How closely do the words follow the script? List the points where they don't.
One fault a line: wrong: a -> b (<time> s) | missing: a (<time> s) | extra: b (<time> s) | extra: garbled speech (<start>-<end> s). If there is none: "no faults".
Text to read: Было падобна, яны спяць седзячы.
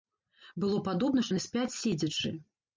no faults